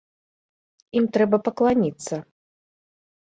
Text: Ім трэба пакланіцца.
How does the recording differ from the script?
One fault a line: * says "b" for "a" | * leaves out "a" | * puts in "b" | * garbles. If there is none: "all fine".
all fine